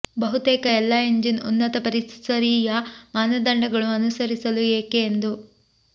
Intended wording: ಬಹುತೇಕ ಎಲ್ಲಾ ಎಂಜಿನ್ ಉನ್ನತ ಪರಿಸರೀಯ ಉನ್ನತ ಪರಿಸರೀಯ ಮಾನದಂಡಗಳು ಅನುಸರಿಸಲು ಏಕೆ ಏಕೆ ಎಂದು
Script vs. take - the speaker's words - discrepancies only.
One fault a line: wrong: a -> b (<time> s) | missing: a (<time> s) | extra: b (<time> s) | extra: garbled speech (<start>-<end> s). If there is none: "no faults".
missing: ಉನ್ನತ ಪರಿಸರೀಯ (2.8 s)
missing: ಏಕೆ (5.0 s)